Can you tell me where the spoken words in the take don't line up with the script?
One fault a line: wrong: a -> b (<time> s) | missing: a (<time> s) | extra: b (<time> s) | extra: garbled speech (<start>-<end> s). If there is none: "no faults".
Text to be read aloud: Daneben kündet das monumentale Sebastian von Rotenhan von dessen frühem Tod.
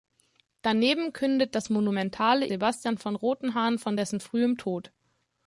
no faults